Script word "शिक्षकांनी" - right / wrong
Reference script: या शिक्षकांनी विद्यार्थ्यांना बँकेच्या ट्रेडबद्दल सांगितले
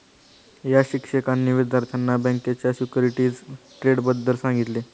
right